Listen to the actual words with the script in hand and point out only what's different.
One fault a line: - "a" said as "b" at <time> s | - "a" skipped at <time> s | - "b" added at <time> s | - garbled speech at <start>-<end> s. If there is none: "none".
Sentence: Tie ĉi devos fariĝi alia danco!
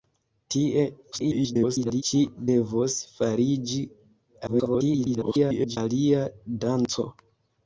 - garbled speech at 1.1-2.0 s
- garbled speech at 4.5-5.8 s